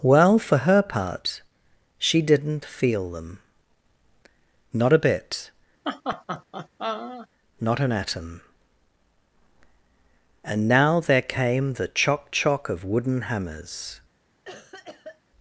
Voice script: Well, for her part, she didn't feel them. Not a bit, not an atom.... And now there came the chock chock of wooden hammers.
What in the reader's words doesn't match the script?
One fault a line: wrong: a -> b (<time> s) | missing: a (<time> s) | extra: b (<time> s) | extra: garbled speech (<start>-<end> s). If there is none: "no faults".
no faults